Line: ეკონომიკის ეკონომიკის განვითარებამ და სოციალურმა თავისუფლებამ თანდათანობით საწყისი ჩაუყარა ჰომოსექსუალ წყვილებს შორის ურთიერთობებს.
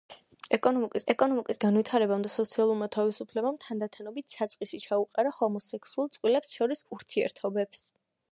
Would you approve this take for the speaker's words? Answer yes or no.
yes